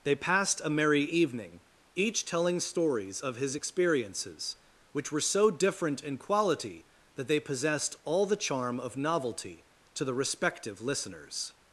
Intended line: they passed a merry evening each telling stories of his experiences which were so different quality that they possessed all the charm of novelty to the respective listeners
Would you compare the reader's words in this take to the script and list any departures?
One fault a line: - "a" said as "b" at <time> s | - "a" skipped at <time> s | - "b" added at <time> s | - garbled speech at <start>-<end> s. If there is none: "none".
- "in" added at 6.0 s